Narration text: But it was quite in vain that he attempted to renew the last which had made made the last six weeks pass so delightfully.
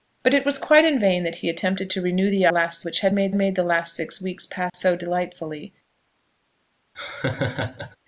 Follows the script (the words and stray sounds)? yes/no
no